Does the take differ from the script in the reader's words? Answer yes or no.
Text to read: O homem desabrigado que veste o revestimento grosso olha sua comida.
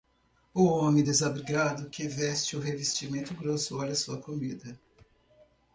no